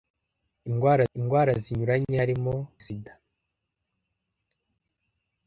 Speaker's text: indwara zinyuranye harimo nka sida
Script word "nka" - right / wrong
wrong